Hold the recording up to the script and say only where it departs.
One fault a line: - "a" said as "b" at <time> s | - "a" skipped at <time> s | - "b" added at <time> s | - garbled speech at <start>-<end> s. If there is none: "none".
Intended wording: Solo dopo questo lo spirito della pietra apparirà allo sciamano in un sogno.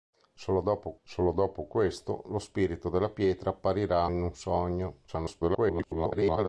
- "solo dopo" added at 1.0 s
- "allo sciamano" skipped at 4.1 s
- garbled speech at 5.1-6.5 s